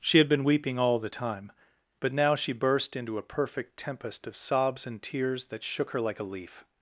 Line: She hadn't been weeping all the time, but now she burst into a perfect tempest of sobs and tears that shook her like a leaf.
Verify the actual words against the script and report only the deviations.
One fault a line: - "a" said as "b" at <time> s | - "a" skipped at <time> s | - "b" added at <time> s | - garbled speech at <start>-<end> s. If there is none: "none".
- "hadn't" said as "had" at 0.2 s